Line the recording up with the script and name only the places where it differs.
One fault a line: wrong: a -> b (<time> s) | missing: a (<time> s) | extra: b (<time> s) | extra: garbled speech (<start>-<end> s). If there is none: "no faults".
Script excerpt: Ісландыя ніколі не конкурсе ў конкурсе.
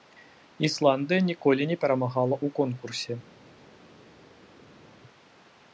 wrong: конкурсе -> перамагала (1.9 s)